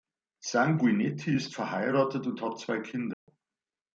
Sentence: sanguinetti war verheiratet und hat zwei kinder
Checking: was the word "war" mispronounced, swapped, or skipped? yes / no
yes